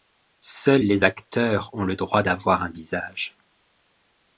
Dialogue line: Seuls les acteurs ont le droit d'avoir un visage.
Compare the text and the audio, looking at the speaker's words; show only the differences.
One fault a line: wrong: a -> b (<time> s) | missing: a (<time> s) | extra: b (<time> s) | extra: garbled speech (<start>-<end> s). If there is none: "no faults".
no faults